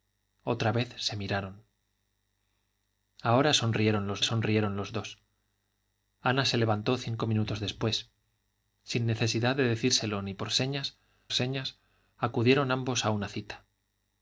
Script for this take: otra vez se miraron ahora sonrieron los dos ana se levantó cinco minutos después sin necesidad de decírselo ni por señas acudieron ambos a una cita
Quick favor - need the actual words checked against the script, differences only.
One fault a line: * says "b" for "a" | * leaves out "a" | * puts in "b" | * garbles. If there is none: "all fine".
* puts in "sonrieron los"
* puts in "señas"